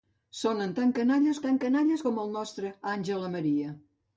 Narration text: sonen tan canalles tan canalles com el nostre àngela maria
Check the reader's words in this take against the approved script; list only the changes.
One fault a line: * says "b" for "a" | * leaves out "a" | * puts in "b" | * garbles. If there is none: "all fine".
all fine